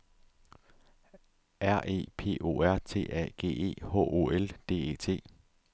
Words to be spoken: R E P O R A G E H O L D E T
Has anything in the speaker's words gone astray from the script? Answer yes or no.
yes